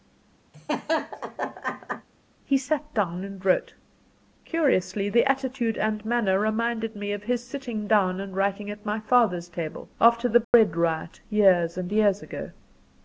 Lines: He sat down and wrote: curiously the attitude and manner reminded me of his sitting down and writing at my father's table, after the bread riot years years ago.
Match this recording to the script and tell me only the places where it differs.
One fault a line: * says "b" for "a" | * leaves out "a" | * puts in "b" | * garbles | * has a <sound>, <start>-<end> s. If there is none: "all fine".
* has a laugh, 0.5-2.1 s
* has a dropout, 10.4-10.5 s
* puts in "and"